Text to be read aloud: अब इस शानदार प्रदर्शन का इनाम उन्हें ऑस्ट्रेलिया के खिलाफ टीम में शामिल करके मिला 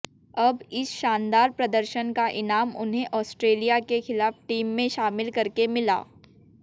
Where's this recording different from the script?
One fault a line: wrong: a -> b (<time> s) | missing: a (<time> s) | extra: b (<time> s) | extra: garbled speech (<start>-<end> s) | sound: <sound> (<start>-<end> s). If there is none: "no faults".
no faults